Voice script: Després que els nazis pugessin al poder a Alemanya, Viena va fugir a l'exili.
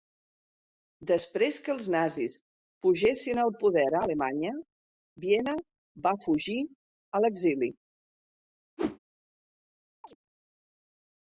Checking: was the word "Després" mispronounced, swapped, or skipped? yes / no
no